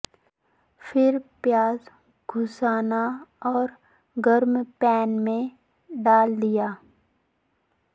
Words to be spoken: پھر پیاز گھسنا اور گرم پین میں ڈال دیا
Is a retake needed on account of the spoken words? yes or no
no